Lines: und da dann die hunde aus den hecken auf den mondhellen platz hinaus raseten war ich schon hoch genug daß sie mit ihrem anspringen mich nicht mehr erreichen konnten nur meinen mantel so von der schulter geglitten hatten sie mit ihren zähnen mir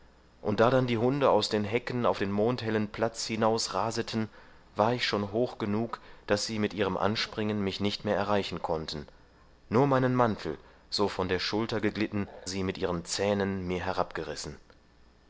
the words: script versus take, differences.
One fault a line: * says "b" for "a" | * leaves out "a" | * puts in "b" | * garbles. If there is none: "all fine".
* leaves out "hatten"